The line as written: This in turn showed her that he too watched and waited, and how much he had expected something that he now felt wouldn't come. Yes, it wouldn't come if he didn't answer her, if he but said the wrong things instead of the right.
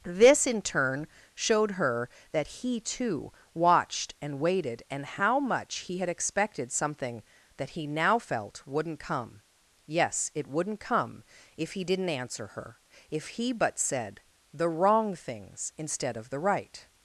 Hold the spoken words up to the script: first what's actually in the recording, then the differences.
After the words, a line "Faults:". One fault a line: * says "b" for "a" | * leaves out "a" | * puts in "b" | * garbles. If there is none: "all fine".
This in turn showed her that he too watched and waited, and how much he had expected something that he now felt wouldn't come. Yes, it wouldn't come if he didn't answer her, if he but said the wrong things instead of the right.
Faults:
all fine